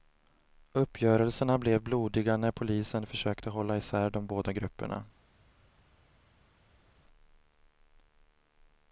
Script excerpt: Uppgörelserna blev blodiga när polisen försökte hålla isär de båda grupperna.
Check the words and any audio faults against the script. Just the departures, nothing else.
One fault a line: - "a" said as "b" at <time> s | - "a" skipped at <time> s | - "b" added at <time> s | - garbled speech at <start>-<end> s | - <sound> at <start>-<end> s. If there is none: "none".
none